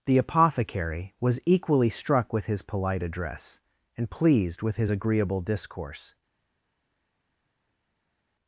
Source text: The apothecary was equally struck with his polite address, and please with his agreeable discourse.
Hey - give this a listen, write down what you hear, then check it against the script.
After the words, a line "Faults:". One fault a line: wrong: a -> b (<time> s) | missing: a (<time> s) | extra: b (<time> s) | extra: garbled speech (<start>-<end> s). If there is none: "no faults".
The apothecary was equally struck with his polite address, and pleased with his agreeable discourse.
Faults:
wrong: please -> pleased (4.1 s)